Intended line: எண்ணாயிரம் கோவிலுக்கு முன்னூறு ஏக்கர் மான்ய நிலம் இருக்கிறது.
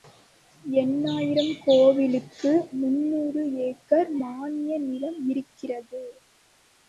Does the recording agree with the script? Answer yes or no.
yes